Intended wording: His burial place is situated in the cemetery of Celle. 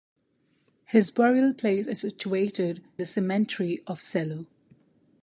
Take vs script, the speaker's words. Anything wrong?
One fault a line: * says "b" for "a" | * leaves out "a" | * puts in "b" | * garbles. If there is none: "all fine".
* leaves out "in"